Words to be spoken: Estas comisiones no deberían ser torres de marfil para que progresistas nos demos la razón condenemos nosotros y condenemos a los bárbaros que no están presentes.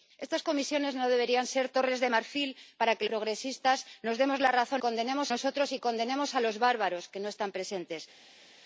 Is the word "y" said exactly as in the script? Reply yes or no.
yes